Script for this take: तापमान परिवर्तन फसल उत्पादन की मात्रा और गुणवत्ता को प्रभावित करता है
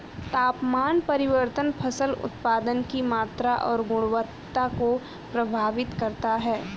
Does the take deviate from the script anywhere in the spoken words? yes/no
no